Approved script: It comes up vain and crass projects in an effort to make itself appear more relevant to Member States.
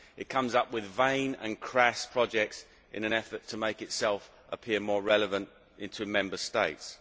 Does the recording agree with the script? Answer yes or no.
no